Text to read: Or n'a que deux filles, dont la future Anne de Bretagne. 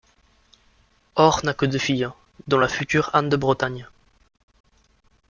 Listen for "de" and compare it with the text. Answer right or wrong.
right